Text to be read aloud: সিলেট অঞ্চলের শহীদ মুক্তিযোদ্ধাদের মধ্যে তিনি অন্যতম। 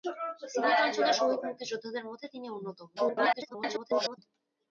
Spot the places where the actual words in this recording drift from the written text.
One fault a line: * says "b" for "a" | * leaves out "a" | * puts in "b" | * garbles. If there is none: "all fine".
* garbles